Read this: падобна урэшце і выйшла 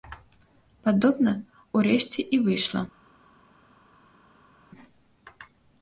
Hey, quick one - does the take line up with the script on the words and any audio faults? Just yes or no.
yes